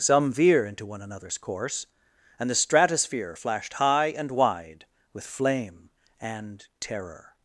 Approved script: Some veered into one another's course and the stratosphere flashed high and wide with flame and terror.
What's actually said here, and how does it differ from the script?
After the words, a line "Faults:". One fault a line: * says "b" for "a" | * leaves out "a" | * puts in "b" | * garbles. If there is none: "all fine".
Some veer into one another's course and the stratosphere flashed high and wide with flame and terror.
Faults:
* says "veer" for "veered"